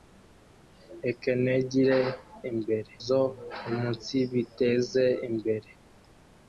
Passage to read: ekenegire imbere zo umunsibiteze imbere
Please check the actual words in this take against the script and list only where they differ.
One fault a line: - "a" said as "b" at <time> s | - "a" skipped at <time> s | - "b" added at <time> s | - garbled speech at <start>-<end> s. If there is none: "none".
none